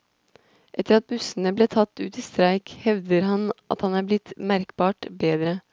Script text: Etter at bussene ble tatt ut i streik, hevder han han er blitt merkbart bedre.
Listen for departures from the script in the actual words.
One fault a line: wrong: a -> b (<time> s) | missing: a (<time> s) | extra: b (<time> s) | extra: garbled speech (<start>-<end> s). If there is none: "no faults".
extra: at (3.8 s)